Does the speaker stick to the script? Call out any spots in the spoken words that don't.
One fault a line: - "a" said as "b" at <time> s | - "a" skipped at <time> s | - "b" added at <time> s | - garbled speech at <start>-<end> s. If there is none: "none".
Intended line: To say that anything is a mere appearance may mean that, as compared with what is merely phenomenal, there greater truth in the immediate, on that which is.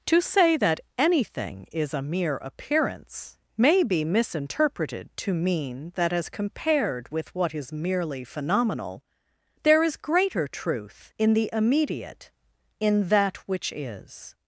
- "be misinterpreted to" added at 3.8 s
- "is" added at 9.8 s
- "on" said as "in" at 12.8 s